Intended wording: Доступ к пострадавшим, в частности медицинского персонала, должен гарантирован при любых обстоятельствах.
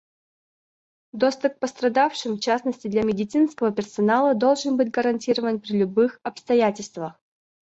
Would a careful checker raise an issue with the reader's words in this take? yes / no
yes